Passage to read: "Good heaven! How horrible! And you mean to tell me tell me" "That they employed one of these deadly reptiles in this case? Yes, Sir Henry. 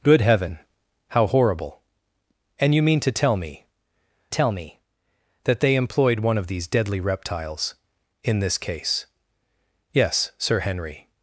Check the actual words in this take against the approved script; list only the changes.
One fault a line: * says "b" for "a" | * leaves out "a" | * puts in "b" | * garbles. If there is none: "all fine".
all fine